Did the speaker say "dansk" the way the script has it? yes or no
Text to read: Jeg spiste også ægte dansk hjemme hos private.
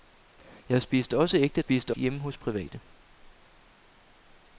no